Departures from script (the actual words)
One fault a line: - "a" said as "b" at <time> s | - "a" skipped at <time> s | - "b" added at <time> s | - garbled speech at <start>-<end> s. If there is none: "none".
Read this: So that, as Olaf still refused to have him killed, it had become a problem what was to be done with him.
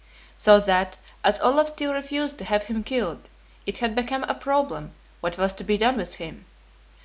none